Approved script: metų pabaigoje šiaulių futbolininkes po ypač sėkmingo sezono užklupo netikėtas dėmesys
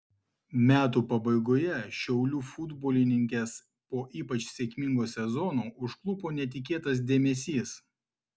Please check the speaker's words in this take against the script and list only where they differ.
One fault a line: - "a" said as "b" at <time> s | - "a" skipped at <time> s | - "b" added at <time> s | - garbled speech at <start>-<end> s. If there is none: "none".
none